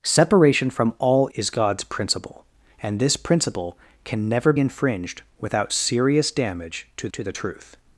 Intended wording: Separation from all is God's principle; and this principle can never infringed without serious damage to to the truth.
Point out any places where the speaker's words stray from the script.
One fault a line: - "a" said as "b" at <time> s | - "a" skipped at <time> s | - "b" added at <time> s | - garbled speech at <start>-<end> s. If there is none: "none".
none